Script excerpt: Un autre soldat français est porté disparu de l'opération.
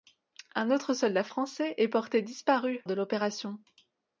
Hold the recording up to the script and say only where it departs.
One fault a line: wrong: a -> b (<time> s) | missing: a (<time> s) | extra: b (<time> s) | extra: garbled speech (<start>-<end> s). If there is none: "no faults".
no faults